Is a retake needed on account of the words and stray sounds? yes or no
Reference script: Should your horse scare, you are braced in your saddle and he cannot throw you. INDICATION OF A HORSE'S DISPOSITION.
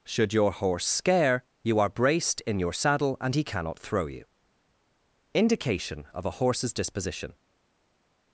no